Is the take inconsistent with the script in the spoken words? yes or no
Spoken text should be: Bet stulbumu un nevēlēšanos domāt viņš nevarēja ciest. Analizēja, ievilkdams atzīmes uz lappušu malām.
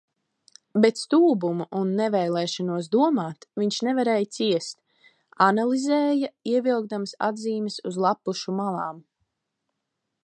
no